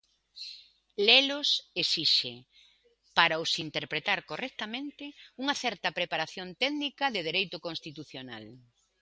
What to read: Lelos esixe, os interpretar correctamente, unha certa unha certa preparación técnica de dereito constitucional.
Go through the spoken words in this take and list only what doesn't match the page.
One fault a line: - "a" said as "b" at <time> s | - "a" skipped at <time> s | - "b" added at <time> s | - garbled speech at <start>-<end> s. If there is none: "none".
- "para" added at 3.2 s
- "unha certa" skipped at 5.9 s